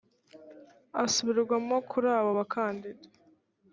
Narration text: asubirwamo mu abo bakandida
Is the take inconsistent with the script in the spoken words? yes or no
yes